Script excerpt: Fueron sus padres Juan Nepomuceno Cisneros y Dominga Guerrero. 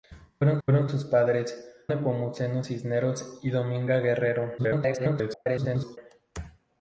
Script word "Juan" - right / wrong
wrong